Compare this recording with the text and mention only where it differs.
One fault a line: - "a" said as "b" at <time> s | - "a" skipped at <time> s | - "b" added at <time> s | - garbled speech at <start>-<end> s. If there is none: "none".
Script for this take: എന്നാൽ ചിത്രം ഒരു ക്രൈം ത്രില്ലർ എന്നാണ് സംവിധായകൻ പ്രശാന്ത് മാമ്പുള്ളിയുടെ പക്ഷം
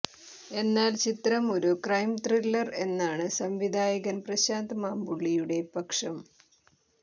none